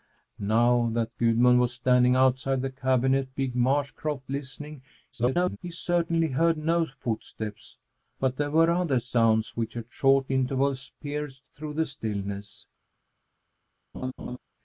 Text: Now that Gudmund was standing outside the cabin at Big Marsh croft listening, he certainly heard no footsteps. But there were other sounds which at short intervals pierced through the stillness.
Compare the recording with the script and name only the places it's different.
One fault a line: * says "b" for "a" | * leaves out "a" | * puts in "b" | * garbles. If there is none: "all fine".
* garbles